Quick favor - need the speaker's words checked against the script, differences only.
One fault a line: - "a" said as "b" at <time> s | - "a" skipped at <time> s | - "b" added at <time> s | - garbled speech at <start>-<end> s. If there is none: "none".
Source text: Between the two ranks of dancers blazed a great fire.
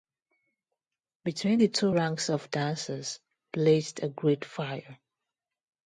none